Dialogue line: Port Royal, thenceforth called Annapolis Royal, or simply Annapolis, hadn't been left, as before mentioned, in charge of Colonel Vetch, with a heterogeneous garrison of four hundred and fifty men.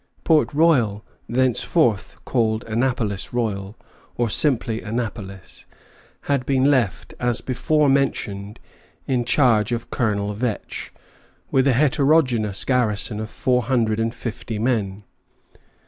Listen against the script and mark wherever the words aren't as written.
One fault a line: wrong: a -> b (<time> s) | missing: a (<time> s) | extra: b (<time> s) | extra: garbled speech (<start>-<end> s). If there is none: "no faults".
wrong: hadn't -> had (6.2 s)